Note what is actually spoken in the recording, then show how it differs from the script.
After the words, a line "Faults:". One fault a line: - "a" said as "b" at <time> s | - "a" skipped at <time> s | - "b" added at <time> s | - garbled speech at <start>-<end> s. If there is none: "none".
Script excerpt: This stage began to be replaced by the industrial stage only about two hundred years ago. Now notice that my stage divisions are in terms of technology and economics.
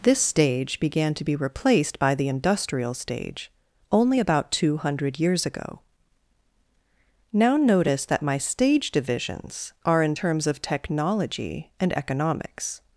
This stage began to be replaced by the industrial stage only about two hundred years ago. Now notice that my stage divisions are in terms of technology and economics.
Faults:
none